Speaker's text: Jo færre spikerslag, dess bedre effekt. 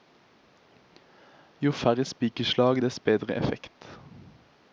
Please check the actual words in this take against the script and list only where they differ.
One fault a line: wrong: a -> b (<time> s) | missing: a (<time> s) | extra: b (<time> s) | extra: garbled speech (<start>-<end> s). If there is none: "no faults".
no faults